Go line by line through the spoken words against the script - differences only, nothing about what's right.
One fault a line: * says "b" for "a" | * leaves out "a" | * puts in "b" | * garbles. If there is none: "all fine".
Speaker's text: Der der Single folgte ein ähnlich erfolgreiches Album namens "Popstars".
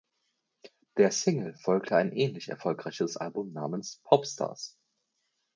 * leaves out "der"